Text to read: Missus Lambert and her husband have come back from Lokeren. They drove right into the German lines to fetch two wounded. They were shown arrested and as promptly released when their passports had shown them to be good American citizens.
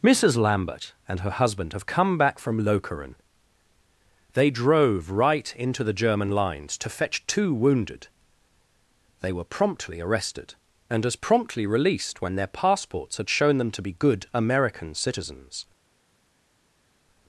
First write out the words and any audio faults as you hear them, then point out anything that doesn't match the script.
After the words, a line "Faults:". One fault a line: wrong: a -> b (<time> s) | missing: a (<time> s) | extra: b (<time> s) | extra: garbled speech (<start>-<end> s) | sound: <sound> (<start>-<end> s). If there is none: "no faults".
Missus Lambert and her husband have come back from Lokeren. They drove right into the German lines to fetch two wounded. They were promptly arrested and as promptly released when their passports had shown them to be good American citizens.
Faults:
wrong: shown -> promptly (9.4 s)